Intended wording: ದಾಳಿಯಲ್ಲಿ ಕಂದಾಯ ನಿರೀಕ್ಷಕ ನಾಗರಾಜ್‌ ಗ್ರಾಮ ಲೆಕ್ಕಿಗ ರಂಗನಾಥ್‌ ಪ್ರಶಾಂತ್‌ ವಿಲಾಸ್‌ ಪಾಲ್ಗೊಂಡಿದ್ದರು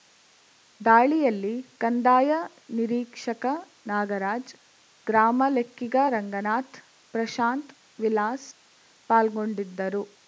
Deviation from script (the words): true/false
false